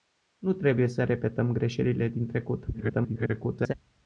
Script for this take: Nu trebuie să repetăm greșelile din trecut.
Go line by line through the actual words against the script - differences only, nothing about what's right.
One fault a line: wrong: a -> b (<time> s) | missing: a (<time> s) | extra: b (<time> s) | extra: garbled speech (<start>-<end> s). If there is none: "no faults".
extra: garbled speech (2.7-3.7 s)